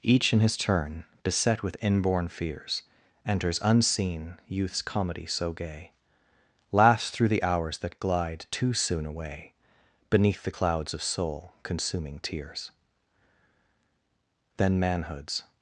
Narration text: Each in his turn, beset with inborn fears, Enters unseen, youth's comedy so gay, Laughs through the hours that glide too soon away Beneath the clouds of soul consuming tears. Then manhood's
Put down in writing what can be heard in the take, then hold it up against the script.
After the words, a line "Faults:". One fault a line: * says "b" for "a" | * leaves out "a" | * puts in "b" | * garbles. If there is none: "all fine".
Each in his turn, beset with inborn fears, Enters unseen, youth's comedy so gay, Laughs through the hours that glide too soon away Beneath the clouds of soul consuming tears. Then manhood's
Faults:
all fine